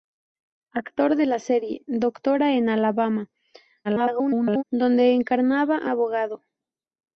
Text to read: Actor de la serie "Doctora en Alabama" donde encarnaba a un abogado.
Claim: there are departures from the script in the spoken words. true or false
true